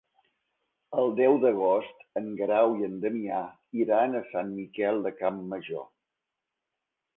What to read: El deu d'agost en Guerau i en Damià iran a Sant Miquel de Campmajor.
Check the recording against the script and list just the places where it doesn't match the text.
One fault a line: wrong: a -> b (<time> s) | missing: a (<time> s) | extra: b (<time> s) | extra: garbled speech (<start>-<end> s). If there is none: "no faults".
no faults